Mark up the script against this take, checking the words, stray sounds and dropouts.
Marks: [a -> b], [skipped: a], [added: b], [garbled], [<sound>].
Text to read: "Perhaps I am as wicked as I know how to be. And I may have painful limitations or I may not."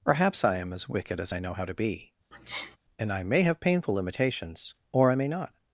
"Perhaps I am as wicked as I know how to be. [sneeze] And I may have painful limitations or I may not."